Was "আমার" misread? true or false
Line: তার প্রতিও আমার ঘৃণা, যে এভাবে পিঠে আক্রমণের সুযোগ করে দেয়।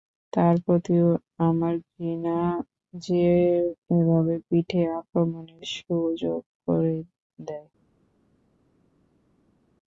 false